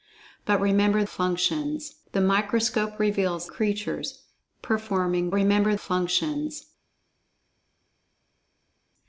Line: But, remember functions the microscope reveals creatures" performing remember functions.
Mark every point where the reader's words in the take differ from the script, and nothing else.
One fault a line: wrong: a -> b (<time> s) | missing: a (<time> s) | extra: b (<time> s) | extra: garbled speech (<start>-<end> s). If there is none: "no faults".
no faults